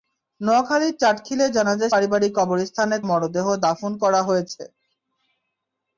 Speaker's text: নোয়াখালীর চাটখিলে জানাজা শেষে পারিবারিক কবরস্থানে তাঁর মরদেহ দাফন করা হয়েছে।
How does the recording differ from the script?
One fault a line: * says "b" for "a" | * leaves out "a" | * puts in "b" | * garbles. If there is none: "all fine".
* leaves out "শেষে"
* leaves out "তাঁর"